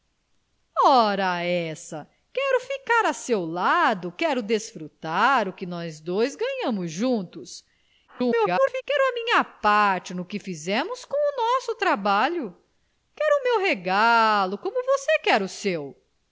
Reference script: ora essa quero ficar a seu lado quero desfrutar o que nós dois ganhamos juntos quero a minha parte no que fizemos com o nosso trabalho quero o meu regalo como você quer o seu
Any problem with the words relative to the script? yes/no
yes